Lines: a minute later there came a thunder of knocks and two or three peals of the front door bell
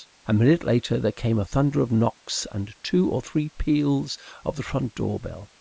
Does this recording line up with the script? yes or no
yes